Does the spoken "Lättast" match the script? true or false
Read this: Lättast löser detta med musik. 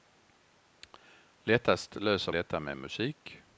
true